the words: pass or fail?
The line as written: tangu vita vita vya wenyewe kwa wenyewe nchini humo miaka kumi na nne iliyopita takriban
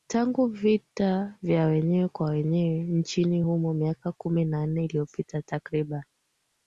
fail